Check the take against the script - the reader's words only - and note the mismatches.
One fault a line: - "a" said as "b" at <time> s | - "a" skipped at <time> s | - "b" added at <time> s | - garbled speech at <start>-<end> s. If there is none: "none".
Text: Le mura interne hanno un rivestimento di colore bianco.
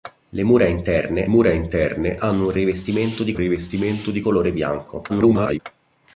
- "mura interne" added at 1.3 s
- "rivestimento di" added at 3.3 s
- garbled speech at 5.1-5.6 s